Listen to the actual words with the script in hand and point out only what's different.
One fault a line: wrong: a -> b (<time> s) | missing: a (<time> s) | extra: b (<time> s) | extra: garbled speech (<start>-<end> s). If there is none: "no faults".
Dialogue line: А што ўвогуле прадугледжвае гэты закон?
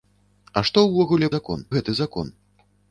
wrong: прадугледжвае -> закон (1.4 s)